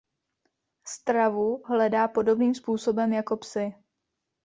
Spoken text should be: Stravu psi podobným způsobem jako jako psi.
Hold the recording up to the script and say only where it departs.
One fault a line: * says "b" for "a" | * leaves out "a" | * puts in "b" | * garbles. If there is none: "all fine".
* says "hledá" for "psi"
* leaves out "jako"